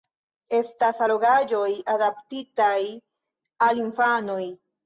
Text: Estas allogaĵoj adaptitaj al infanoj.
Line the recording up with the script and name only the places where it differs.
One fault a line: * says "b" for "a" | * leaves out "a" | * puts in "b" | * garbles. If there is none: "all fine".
all fine